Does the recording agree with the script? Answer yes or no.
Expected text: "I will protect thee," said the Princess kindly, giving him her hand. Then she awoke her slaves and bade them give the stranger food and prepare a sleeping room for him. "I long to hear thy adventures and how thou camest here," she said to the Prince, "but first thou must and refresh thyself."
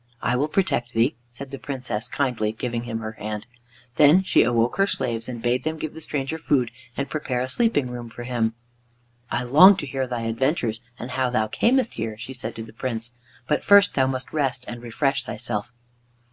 no